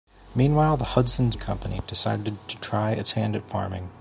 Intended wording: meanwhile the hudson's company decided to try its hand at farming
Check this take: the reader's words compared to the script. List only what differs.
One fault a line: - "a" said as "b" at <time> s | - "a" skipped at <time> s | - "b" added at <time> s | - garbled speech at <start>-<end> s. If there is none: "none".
none